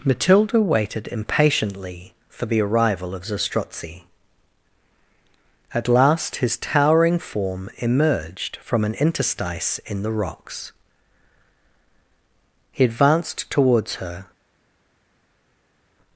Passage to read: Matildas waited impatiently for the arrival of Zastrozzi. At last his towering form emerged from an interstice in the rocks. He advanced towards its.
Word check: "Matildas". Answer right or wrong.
wrong